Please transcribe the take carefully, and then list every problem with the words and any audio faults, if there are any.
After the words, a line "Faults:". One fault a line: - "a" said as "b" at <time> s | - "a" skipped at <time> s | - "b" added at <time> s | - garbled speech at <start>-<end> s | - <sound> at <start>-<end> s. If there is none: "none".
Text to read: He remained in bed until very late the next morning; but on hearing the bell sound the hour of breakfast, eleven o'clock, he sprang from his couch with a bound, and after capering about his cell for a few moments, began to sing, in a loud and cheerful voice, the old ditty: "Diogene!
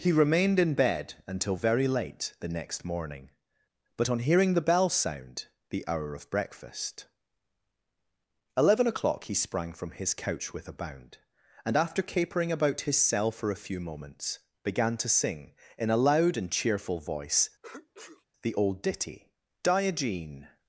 He remained in bed until very late the next morning; but on hearing the bell sound the hour of breakfast, eleven o'clock, he sprang from his couch with a bound, and after capering about his cell for a few moments, began to sing, in a loud and cheerful voice, the old ditty: "Diogene!
Faults:
- sneeze at 17.6-18.3 s